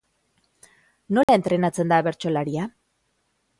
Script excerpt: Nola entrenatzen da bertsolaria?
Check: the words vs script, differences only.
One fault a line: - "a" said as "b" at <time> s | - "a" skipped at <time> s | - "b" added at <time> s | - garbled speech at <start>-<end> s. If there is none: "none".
none